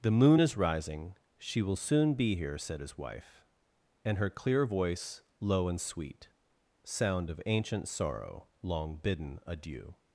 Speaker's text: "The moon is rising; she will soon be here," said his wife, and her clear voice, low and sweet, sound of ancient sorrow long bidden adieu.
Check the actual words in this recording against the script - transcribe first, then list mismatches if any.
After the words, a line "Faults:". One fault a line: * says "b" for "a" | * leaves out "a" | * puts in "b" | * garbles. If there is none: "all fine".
"The moon is rising; she will soon be here," said his wife, and her clear voice, low and sweet, sound of ancient sorrow long bidden adieu.
Faults:
all fine